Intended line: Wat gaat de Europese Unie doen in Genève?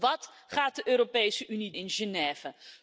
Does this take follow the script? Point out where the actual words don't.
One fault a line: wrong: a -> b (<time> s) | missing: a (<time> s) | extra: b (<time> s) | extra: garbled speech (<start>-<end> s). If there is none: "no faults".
missing: doen (1.7 s)